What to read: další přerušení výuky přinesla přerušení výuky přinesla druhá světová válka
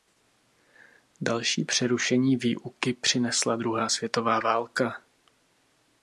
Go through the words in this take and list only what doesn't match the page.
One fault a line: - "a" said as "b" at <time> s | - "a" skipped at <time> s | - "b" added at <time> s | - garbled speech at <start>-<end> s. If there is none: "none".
- "přerušení výuky přinesla" skipped at 3.5 s